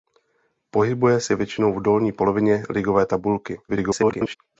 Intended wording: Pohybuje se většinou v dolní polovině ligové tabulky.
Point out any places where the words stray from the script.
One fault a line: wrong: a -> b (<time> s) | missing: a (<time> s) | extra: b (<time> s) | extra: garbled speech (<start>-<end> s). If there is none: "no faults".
extra: garbled speech (3.7-4.4 s)